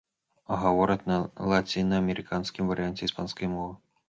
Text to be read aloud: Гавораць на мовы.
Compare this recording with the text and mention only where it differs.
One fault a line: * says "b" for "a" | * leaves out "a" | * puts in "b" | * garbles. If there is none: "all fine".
* puts in "лацінаамерыканскім варыянце іспанскай"